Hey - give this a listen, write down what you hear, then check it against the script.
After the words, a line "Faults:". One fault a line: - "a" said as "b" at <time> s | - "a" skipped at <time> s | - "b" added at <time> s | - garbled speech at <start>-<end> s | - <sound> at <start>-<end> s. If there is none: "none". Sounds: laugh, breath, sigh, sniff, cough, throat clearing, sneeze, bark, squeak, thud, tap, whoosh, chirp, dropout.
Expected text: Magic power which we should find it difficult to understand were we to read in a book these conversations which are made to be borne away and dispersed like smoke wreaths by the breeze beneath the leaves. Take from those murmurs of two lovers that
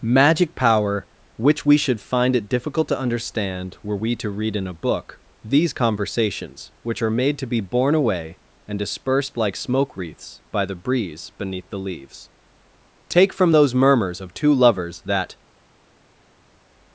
Magic power which we should find it difficult to understand were we to read in a book these conversations which are made to be borne away and dispersed like smoke wreaths by the breeze beneath the leaves. Take from those murmurs of two lovers that
Faults:
none